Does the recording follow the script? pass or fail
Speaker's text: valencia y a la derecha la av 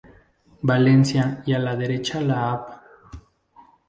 pass